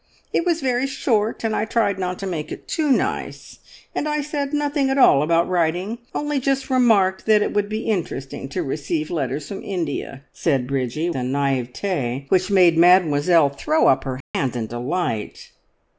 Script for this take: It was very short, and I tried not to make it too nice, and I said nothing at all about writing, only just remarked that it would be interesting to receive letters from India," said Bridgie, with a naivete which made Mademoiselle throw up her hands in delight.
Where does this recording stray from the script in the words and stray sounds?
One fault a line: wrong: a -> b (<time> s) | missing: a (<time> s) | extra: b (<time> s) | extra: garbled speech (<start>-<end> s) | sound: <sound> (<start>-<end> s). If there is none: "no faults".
missing: with (11.1 s)
sound: dropout (14.2-14.3 s)